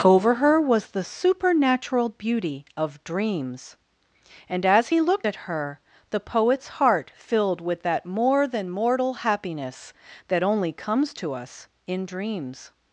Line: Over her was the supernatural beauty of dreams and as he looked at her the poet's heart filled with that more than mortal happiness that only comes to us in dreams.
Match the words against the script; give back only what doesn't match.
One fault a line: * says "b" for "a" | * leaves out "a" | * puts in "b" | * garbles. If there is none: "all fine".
all fine